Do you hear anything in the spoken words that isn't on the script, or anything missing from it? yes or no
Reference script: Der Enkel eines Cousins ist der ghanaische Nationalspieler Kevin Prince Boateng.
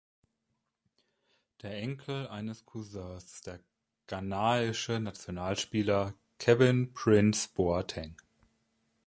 no